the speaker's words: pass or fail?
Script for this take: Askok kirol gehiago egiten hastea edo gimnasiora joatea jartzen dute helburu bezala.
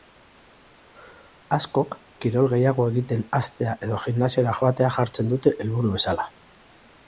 pass